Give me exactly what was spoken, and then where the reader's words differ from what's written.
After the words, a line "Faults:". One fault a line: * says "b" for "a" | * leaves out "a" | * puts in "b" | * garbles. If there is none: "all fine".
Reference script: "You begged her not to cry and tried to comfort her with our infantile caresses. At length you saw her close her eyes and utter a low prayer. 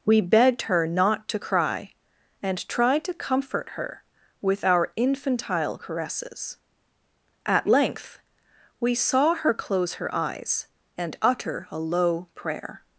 "We begged her not to cry and tried to comfort her with our infantile caresses. At length we saw her close her eyes and utter a low prayer.
Faults:
* says "We" for "You"
* says "we" for "you"